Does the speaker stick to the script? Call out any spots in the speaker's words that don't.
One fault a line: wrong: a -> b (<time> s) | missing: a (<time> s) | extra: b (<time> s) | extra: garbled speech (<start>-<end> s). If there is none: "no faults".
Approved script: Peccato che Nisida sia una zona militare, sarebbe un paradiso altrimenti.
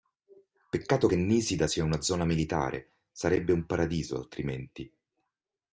no faults